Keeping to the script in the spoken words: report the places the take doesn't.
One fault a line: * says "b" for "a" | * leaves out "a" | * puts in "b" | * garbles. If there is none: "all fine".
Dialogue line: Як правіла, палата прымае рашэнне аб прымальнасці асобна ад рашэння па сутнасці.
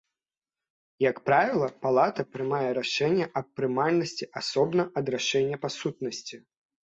all fine